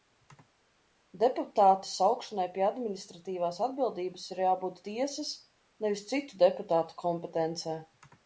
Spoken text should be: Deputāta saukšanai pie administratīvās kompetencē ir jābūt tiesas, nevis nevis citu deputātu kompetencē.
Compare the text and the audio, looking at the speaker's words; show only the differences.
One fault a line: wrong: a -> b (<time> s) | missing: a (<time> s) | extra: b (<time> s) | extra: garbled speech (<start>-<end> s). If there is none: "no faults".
wrong: kompetencē -> atbildības (3.7 s)
missing: nevis (6.0 s)